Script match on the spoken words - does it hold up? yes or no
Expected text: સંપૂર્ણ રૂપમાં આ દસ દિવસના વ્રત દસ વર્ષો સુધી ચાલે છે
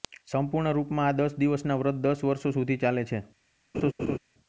yes